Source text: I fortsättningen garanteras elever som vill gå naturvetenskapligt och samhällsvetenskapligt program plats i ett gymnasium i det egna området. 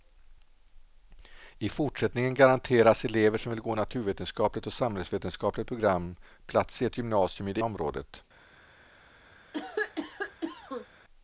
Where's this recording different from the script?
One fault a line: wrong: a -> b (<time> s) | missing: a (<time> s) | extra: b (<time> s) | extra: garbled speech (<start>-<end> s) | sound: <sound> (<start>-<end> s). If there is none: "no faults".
missing: egna (7.6 s)
sound: cough (9.5-10.9 s)